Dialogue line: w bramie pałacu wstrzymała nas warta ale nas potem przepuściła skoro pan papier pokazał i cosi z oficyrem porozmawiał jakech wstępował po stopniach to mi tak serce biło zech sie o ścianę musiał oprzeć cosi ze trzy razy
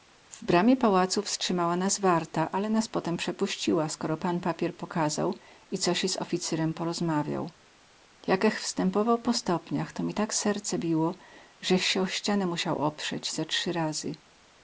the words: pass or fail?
fail